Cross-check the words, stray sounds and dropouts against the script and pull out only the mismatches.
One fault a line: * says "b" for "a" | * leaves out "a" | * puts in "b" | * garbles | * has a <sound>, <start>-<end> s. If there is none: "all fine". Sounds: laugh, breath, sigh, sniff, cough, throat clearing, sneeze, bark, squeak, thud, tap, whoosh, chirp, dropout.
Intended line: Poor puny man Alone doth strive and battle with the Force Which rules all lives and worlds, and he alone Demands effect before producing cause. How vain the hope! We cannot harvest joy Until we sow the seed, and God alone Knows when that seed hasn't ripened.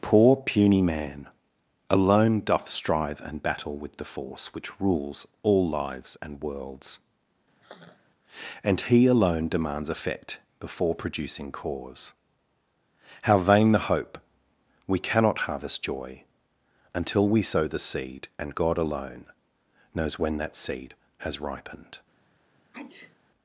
* has a sigh, 7.6-8.1 s
* says "has" for "hasn't"
* has a sneeze, 22.7-23.2 s